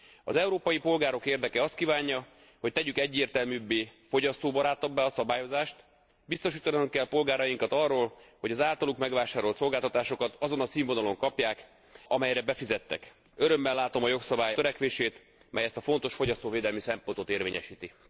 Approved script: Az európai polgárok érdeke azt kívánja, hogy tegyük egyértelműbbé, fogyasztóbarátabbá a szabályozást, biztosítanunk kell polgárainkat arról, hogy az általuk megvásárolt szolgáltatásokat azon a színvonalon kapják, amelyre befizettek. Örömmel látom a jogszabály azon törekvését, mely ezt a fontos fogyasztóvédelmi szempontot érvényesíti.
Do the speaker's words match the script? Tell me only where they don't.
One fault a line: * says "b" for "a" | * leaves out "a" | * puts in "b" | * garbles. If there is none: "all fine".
* leaves out "azon"